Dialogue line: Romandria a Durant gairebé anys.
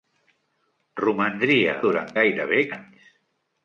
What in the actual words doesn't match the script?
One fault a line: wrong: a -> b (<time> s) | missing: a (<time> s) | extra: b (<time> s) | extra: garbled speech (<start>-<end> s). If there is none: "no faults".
no faults